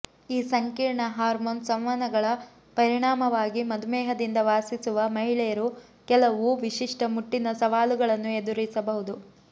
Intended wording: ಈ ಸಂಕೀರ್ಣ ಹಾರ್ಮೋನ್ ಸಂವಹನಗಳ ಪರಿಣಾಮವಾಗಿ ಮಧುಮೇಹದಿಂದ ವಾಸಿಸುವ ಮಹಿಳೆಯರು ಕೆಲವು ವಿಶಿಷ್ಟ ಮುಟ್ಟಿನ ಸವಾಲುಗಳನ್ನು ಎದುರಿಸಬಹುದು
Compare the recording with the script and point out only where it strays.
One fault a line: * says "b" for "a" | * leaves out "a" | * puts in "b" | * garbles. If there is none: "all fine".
all fine